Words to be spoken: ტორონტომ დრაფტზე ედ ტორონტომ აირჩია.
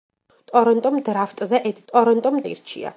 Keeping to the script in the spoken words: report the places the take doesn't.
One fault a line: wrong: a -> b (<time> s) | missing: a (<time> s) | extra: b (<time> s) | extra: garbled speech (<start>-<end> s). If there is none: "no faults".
no faults